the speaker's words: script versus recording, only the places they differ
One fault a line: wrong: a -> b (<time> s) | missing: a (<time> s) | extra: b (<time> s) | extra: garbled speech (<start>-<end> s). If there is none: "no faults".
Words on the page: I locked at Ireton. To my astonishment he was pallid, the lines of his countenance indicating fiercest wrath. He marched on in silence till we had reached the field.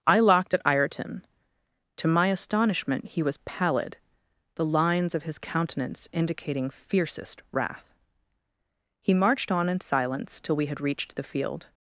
no faults